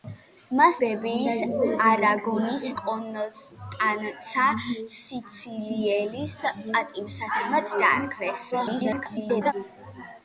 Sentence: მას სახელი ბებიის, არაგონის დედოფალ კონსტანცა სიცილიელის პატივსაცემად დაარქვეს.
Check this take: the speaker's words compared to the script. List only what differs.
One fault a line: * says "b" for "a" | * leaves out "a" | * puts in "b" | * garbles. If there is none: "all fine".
* leaves out "სახელი"
* leaves out "დედოფალ"
* garbles